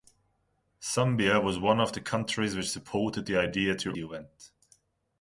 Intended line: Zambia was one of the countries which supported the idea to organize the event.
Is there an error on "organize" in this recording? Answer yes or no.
yes